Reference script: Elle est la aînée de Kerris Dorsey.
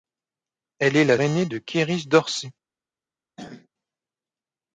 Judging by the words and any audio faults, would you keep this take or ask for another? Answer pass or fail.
fail